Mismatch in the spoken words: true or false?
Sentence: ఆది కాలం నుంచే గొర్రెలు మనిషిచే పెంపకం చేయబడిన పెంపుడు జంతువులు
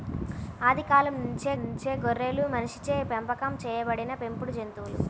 true